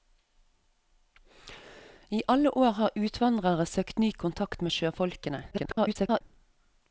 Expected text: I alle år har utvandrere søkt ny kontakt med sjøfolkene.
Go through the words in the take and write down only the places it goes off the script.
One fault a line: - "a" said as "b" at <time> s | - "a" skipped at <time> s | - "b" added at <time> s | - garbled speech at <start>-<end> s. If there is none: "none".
- garbled speech at 5.5-6.2 s